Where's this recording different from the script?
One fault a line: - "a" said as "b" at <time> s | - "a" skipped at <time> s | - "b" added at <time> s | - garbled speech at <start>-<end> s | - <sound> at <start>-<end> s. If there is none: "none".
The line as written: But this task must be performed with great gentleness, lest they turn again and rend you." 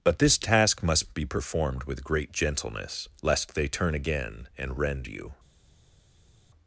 none